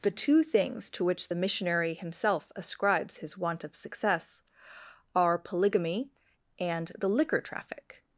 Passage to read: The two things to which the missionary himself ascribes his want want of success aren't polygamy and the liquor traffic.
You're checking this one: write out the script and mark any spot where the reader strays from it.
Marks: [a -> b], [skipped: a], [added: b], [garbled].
The two things to which the missionary himself ascribes his want [skipped: want] of success [aren't -> are] polygamy and the liquor traffic.